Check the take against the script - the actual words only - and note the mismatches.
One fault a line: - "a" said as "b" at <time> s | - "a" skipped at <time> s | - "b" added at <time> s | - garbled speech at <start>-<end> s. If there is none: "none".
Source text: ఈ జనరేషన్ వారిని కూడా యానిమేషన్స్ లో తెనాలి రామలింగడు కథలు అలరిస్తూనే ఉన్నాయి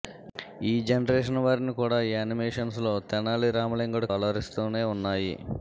- "కథలు" skipped at 4.1 s